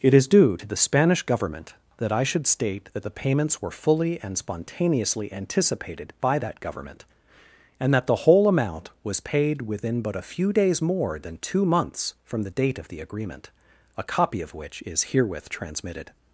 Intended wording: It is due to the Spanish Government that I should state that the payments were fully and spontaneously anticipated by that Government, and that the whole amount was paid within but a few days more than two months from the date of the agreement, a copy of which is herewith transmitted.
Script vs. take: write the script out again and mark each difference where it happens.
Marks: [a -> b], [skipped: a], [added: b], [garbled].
It is due to the Spanish Government that I should state that the payments were fully and spontaneously anticipated by that Government, and that the whole amount was paid within but a few days more than two months from the date of the agreement, a copy of which is herewith transmitted.